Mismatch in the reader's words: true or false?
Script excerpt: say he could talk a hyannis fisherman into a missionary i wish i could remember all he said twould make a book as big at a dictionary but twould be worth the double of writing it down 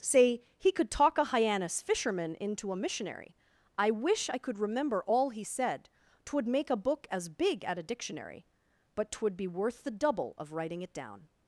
false